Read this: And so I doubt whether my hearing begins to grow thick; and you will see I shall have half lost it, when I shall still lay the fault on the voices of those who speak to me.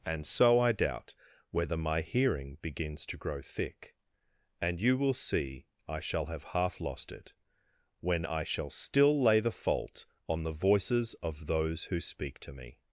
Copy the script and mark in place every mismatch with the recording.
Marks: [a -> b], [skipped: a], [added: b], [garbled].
And so I doubt whether my hearing begins to grow thick; and you will see I shall have half lost it, when I shall still lay the fault on the voices of those who speak to me.